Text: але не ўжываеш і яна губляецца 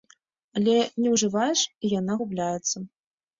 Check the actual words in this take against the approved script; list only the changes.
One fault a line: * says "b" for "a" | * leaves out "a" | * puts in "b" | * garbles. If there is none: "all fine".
all fine